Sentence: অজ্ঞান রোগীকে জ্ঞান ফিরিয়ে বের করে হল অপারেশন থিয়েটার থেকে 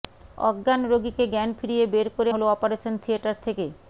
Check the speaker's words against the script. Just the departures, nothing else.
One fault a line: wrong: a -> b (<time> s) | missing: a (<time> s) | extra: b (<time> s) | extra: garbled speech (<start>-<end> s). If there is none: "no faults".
no faults